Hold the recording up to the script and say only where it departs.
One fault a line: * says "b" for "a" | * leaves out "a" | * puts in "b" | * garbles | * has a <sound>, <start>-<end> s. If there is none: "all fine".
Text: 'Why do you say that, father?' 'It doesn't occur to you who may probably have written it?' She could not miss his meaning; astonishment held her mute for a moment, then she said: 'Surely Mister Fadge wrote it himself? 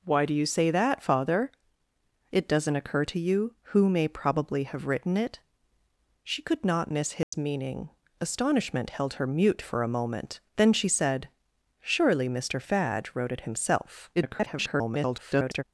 * has a dropout, 7.2-7.3 s
* garbles